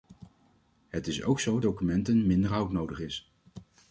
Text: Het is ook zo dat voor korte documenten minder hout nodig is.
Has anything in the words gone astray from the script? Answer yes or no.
yes